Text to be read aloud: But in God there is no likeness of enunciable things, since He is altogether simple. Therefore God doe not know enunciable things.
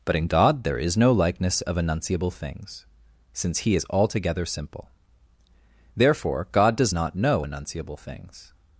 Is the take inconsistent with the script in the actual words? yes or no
yes